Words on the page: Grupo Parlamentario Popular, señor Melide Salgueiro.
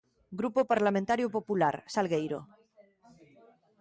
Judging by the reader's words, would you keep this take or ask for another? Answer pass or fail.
fail